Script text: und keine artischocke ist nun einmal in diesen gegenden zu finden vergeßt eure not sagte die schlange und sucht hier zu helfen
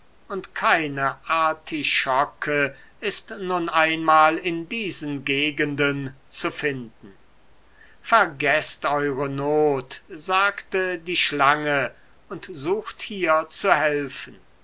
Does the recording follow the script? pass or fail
pass